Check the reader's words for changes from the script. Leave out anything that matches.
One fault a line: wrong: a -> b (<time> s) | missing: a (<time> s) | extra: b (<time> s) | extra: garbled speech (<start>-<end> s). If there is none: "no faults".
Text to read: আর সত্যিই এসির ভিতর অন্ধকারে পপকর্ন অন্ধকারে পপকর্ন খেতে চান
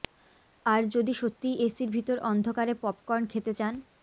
extra: যদি (0.9 s)
missing: অন্ধকারে পপকর্ন (3.2 s)